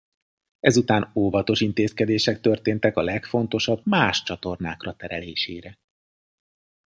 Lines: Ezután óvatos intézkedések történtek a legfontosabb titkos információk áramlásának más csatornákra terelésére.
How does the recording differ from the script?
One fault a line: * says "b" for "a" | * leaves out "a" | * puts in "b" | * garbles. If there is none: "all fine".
* leaves out "titkos információk áramlásának"